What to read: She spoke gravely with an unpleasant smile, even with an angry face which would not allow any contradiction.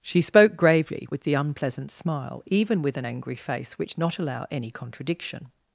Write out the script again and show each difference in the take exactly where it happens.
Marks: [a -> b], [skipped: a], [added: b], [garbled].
She spoke gravely with [an -> the] unpleasant smile, even with an angry face which [skipped: would] not allow any contradiction.